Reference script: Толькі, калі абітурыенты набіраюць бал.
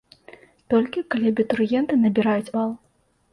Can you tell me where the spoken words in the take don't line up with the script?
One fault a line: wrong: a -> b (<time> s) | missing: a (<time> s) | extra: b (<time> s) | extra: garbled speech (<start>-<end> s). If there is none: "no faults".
no faults